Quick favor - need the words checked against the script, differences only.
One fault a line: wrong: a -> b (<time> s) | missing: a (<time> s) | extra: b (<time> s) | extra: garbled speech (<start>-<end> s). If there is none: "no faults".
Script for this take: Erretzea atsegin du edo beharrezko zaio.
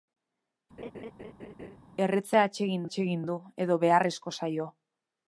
extra: atsegin (2.9 s)